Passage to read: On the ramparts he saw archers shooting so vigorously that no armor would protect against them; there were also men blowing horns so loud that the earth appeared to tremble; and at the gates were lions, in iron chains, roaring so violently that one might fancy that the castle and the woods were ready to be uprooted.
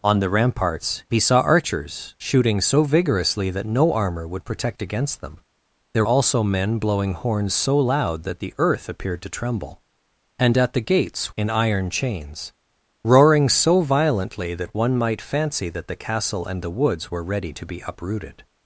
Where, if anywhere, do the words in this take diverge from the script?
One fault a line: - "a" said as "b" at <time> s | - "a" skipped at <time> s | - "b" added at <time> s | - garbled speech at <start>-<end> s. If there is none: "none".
- "were" skipped at 6.0 s
- "were lions" skipped at 11.3 s